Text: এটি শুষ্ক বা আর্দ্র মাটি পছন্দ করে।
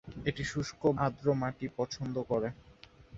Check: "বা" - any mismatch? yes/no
yes